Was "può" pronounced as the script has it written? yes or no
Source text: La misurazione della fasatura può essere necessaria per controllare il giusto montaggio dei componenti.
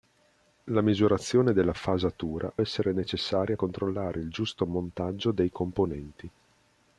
no